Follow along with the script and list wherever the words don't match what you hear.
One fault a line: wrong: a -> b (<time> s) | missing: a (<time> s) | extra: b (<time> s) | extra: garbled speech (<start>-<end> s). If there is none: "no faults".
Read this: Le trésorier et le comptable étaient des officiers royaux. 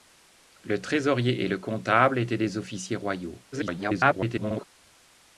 extra: garbled speech (3.5-4.7 s)